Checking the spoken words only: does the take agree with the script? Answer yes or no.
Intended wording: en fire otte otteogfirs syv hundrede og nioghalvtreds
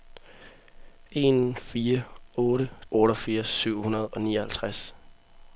yes